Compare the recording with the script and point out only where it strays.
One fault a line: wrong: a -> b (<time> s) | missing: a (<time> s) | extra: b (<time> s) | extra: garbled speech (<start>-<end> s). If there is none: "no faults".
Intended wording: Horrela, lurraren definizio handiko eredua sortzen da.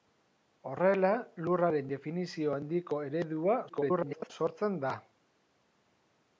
extra: garbled speech (3.7-4.3 s)